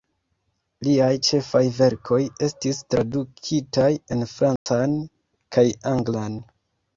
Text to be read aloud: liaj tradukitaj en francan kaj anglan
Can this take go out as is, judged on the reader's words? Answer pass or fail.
fail